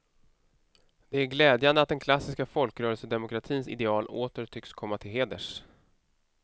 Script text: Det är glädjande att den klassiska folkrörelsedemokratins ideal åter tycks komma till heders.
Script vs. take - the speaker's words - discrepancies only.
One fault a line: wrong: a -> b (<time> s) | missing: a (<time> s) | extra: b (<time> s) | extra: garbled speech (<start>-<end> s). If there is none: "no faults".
no faults